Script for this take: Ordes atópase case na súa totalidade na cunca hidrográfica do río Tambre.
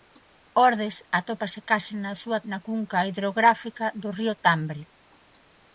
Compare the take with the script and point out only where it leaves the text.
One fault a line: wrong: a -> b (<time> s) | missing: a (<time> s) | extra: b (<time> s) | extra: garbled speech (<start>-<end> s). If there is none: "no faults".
missing: totalidade (2.4 s)